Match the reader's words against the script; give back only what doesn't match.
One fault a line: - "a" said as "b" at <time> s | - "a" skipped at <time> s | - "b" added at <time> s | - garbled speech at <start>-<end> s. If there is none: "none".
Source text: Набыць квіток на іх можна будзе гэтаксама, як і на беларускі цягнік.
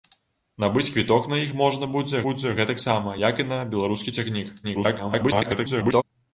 - "будзе" added at 2.3 s
- garbled speech at 4.6-6.0 s